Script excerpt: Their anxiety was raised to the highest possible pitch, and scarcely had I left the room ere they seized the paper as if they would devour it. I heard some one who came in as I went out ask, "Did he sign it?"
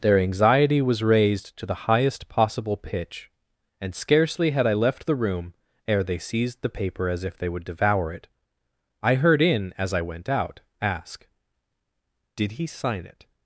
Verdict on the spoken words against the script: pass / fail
fail